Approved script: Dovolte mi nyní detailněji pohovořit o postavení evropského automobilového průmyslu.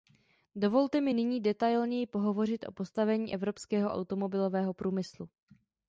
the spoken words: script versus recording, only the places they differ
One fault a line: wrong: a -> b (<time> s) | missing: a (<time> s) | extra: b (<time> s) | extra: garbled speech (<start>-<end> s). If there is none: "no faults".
no faults